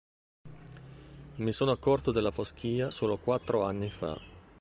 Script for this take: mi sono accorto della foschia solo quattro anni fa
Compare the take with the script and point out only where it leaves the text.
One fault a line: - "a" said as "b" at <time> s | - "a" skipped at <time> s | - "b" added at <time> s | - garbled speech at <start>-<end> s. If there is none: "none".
none